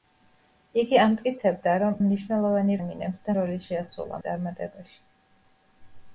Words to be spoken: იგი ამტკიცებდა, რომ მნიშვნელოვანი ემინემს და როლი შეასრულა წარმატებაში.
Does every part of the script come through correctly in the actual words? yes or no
yes